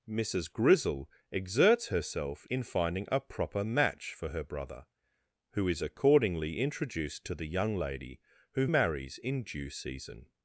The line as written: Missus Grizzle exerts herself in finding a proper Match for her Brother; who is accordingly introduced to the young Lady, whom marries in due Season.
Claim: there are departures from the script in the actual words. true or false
false